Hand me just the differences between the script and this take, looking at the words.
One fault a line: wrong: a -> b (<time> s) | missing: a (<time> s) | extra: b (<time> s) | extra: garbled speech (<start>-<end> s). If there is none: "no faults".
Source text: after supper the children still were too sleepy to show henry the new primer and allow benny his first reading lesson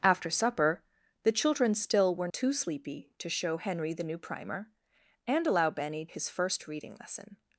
no faults